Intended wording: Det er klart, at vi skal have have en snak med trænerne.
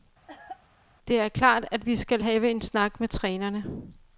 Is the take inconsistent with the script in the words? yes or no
yes